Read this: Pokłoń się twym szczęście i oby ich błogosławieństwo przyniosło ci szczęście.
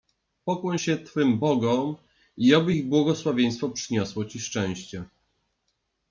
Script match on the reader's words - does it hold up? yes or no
no